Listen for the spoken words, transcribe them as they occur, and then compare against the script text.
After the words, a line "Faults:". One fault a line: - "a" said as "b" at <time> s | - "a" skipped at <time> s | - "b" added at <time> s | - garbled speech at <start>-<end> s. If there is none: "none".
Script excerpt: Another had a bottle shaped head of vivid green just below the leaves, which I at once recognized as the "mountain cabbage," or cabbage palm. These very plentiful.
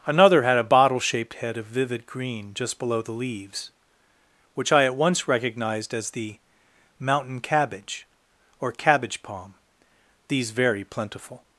Another had a bottle shaped head of vivid green just below the leaves, which I at once recognized as the "mountain cabbage," or cabbage palm. These very plentiful.
Faults:
none